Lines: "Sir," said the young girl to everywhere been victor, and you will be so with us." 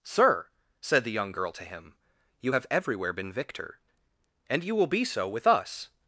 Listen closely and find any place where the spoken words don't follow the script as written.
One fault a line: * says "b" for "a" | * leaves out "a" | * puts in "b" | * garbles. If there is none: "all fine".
* puts in "him you have"